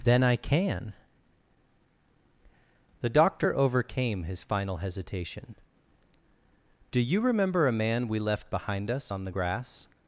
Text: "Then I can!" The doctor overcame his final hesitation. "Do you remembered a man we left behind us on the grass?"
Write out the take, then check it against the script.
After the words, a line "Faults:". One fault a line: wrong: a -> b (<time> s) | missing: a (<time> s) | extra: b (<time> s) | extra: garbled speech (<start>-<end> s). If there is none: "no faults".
"Then I can!" The doctor overcame his final hesitation. "Do you remember a man we left behind us on the grass?"
Faults:
wrong: remembered -> remember (7.2 s)